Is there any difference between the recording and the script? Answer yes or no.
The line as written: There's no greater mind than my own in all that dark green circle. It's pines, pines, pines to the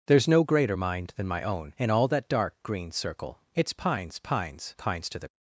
no